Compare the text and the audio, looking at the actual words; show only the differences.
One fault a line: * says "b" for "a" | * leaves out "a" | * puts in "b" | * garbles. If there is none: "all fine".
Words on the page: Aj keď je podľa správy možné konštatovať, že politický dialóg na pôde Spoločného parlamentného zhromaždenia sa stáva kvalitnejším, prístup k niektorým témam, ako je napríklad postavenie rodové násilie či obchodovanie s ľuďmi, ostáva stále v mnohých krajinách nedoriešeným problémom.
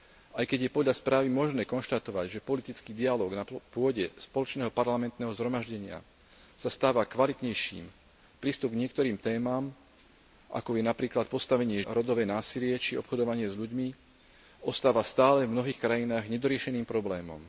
all fine